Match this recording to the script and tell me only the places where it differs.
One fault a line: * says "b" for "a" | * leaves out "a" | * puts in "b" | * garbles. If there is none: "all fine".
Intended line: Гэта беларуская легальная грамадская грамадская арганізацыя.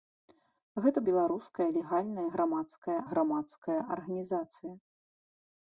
all fine